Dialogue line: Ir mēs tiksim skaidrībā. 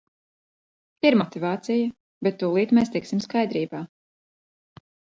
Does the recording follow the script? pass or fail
fail